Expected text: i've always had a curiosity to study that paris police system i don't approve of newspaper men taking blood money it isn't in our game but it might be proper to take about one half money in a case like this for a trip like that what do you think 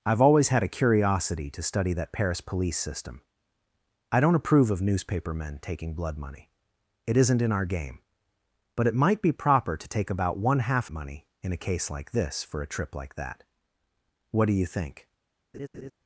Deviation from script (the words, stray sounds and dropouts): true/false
true